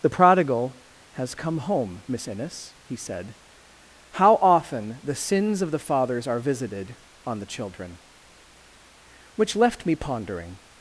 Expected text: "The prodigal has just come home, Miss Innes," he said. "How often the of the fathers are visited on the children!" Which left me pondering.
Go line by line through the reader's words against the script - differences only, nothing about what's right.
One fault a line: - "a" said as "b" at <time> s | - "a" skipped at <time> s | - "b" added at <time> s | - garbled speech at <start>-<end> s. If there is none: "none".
- "just" skipped at 1.3 s
- "sins" added at 5.2 s